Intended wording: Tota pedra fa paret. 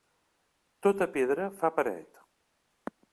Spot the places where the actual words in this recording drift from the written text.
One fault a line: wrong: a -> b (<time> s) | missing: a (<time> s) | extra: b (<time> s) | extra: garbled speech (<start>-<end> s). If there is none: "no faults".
no faults